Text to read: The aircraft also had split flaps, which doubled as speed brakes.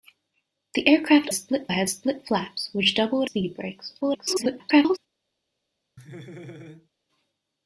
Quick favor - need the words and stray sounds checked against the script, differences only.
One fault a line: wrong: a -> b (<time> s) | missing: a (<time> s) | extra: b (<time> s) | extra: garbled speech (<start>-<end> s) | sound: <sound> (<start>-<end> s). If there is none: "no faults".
wrong: also -> split (1.3 s)
missing: as (3.3 s)
extra: garbled speech (4.0-5.0 s)
sound: laugh (6.0-6.9 s)